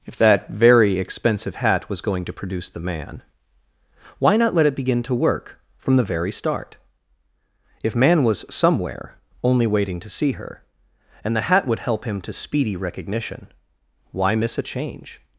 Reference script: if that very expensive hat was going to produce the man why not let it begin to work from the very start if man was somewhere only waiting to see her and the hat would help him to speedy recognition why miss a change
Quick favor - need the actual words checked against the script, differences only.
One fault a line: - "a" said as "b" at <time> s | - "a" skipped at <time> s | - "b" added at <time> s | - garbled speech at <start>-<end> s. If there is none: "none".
none